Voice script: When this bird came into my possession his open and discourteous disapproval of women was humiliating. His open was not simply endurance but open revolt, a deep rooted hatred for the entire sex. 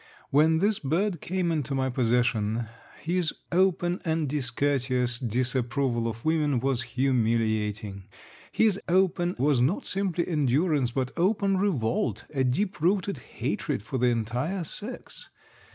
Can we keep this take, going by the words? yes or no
yes